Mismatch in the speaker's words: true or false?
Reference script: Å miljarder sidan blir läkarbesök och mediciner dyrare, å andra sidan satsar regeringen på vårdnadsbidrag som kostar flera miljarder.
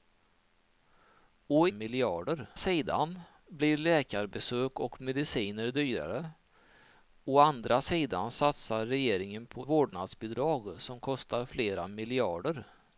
false